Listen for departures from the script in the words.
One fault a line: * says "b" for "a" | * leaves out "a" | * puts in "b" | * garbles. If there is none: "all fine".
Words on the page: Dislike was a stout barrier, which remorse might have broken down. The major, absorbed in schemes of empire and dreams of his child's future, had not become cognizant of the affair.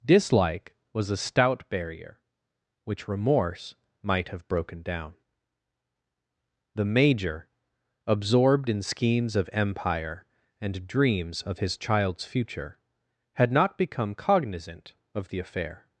all fine